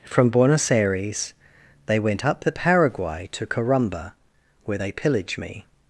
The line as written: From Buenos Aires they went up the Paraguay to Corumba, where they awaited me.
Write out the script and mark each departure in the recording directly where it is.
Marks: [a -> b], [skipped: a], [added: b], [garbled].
From Buenos Aires they went up the Paraguay to Corumba, where they [awaited -> pillage] me.